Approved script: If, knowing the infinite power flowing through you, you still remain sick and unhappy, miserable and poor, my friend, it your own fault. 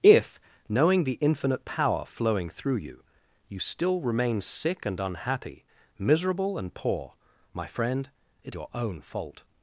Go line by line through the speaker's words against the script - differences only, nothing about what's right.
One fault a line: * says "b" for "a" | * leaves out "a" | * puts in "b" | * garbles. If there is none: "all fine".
all fine